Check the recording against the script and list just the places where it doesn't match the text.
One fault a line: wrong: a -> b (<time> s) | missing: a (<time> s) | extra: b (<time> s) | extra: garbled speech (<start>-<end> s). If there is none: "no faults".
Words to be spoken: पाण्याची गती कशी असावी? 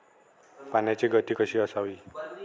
no faults